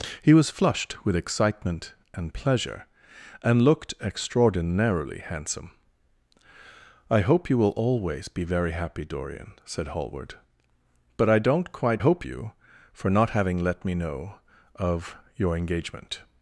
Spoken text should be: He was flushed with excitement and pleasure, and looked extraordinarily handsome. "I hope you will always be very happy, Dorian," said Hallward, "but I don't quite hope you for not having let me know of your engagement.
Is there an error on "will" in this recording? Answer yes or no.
no